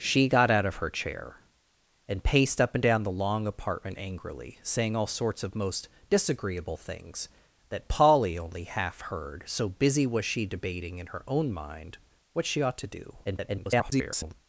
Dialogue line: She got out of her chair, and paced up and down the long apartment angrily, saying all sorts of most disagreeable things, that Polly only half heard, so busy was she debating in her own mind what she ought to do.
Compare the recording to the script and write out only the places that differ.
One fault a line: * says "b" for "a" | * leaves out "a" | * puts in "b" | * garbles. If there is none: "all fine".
* garbles